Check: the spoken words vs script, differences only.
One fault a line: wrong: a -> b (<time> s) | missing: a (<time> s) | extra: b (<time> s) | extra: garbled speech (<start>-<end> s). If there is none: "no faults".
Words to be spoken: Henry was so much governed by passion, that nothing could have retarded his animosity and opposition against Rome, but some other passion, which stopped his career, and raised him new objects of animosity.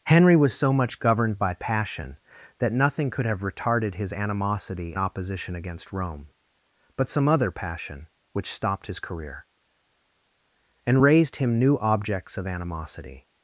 missing: and (4.9 s)